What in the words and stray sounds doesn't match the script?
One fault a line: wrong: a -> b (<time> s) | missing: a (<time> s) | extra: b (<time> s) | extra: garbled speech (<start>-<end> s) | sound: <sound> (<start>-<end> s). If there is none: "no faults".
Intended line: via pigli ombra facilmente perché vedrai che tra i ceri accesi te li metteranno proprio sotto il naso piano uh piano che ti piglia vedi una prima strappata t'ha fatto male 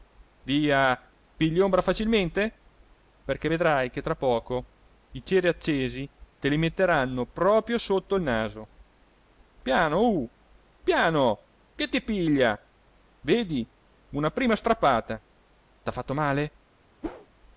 extra: poco (4.2 s)
sound: whoosh (17.0-17.3 s)